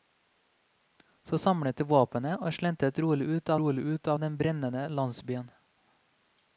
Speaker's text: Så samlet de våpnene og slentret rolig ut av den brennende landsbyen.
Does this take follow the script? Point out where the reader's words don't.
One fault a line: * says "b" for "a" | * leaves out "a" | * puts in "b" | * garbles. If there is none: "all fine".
* puts in "rolig ut"